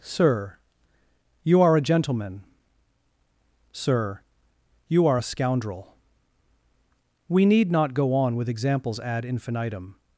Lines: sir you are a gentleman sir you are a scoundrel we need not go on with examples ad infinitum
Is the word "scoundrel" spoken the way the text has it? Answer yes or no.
yes